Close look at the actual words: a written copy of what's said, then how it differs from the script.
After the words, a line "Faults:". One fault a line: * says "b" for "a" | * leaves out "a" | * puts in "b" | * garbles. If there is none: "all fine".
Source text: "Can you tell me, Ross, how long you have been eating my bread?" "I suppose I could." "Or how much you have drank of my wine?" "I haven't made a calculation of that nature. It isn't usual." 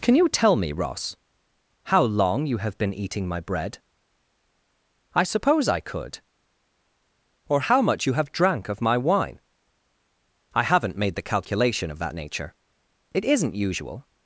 "Can you tell me, Ross, how long you have been eating my bread?" "I suppose I could." "Or how much you have drank of my wine?" "I haven't made the calculation of that nature. It isn't usual."
Faults:
* says "the" for "a"